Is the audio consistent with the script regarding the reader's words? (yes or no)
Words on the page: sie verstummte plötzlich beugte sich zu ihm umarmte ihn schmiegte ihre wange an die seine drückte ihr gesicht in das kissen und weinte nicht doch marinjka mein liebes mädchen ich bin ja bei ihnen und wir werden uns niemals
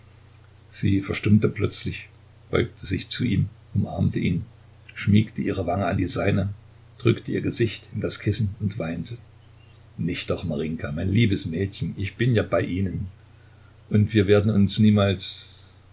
yes